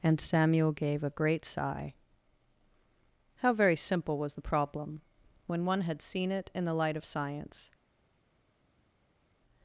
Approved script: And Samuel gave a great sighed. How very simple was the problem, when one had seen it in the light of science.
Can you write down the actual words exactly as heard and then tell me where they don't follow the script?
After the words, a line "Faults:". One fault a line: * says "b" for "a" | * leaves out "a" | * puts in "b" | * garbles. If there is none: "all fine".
And Samuel gave a great sigh. How very simple was the problem, when one had seen it in the light of science.
Faults:
* says "sigh" for "sighed"